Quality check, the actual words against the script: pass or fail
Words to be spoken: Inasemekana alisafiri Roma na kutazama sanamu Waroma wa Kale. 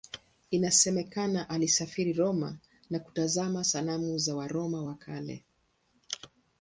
fail